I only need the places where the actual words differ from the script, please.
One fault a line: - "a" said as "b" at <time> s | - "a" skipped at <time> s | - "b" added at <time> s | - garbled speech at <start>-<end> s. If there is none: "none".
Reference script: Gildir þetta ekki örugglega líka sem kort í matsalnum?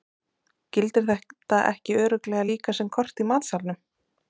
none